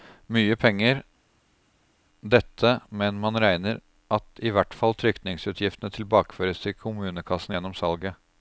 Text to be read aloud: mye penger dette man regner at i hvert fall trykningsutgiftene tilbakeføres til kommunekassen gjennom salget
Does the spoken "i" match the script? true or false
true